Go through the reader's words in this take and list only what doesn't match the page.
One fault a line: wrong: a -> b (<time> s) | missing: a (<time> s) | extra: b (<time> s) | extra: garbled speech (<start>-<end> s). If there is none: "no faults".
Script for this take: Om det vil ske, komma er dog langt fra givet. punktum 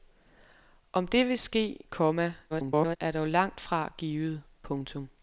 extra: garbled speech (2.5-3.0 s)